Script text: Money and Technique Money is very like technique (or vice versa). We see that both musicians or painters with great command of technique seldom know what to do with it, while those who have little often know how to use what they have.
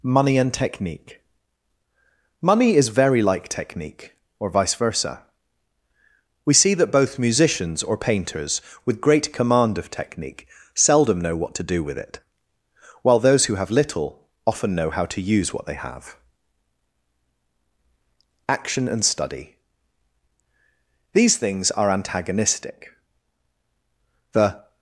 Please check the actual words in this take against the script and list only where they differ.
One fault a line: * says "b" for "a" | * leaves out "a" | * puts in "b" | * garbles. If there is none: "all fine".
* puts in "Action and Study These things are antagonistic The"